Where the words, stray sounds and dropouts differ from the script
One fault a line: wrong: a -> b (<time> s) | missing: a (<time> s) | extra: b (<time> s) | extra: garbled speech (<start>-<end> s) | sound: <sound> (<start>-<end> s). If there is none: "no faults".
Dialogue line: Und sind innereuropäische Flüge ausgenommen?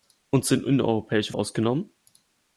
missing: Flüge (1.3 s)